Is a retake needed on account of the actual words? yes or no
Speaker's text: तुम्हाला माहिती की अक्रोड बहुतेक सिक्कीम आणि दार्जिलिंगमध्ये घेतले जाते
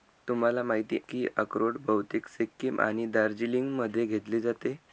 no